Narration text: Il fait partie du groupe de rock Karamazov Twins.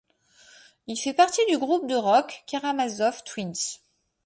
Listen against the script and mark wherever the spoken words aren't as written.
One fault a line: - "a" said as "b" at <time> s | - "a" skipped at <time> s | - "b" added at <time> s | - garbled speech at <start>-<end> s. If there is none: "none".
none